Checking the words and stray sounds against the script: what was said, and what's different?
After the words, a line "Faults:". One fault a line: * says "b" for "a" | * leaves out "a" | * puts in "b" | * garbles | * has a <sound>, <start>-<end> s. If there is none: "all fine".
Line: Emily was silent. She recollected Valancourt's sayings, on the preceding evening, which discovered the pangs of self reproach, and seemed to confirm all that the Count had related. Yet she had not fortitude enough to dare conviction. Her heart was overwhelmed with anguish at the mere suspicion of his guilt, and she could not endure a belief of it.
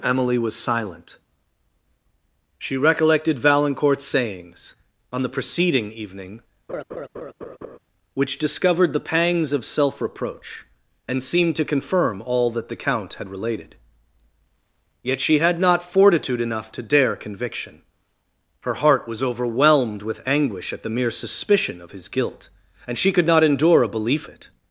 Emily was silent. She recollected Valancourt's sayings, on the preceding evening, which discovered the pangs of self reproach, and seemed to confirm all that the Count had related. Yet she had not fortitude enough to dare conviction. Her heart was overwhelmed with anguish at the mere suspicion of his guilt, and she could not endure a belief it.
Faults:
* has a laugh, 6.7-7.8 s
* leaves out "of"